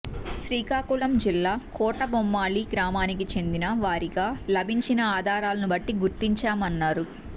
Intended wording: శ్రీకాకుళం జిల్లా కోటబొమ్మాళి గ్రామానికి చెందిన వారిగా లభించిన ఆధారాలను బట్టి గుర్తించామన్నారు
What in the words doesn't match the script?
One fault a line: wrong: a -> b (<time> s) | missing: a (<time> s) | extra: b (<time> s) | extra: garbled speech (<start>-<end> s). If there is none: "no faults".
no faults